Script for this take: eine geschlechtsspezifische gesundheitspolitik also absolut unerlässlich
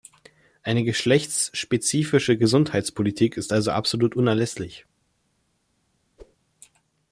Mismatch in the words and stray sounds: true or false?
true